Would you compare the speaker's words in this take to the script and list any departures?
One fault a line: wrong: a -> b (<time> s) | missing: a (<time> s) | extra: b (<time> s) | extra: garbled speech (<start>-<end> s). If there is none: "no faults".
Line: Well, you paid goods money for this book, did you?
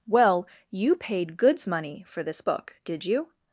no faults